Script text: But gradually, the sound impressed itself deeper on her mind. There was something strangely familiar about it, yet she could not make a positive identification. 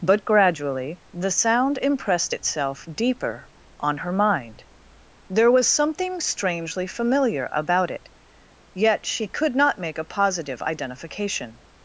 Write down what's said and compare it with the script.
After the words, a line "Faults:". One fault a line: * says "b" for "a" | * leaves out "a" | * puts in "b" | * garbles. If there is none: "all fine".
But gradually, the sound impressed itself deeper on her mind. There was something strangely familiar about it, yet she could not make a positive identification.
Faults:
all fine